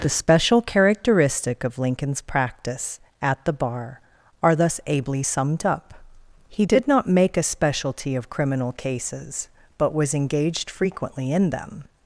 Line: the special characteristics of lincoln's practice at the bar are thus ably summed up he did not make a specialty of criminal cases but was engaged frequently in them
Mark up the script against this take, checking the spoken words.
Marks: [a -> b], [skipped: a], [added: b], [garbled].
the special [characteristics -> characteristic] of lincoln's practice at the bar are thus ably summed up he did not make a specialty of criminal cases but was engaged frequently in them